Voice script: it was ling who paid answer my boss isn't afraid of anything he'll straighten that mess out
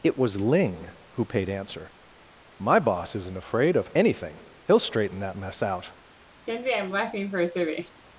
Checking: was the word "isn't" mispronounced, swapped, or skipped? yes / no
no